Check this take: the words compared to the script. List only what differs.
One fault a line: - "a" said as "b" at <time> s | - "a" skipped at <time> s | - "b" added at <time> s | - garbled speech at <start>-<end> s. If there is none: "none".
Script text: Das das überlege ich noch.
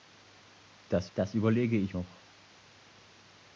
none